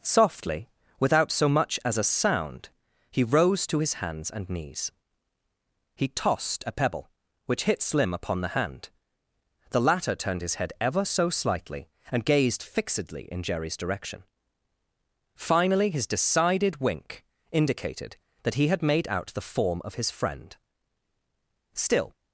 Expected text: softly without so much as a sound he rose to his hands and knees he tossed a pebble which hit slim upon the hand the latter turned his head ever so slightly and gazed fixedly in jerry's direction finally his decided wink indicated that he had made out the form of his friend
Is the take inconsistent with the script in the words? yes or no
yes